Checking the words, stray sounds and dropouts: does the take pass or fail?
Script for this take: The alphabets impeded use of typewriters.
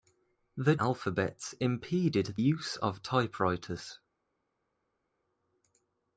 pass